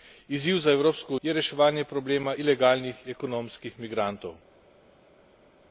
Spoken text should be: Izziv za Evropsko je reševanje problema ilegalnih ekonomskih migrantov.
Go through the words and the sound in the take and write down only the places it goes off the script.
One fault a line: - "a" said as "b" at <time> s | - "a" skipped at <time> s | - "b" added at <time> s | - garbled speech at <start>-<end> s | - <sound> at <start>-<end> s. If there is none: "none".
none